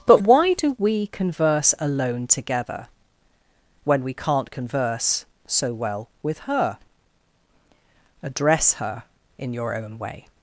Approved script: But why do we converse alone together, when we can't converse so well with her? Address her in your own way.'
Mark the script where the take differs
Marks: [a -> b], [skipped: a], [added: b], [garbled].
But why do we converse alone together, when we can't converse so well with her? Address her in your own way.'